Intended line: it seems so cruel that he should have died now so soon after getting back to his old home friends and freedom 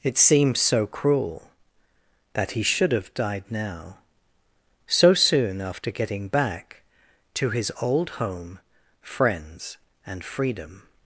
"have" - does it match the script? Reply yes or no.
yes